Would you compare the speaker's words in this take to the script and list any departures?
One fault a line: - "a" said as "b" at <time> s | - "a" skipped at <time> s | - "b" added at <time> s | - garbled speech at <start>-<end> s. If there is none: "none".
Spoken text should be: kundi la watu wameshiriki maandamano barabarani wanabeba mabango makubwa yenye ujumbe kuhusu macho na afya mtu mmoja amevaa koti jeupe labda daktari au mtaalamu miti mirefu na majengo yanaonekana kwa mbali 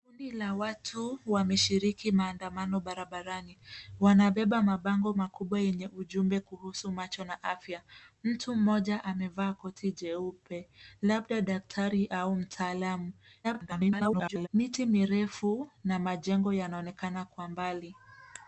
- garbled speech at 13.4-14.5 s